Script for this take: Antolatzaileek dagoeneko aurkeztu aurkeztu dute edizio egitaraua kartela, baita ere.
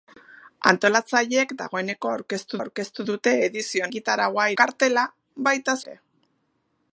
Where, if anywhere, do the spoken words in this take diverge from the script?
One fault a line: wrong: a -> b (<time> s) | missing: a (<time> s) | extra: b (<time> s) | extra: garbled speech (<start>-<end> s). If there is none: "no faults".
no faults